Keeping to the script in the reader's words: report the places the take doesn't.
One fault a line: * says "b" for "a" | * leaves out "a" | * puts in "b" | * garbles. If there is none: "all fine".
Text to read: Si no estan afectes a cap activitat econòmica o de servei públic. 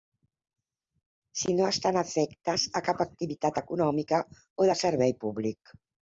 all fine